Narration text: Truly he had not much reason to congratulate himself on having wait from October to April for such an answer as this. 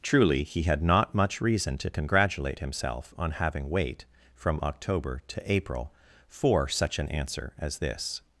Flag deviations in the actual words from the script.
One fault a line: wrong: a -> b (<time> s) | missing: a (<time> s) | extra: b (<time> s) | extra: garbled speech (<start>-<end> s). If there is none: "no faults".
no faults